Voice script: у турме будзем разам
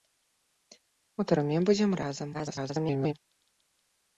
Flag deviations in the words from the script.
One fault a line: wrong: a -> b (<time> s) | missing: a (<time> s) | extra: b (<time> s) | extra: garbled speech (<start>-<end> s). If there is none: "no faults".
extra: garbled speech (2.3-3.1 s)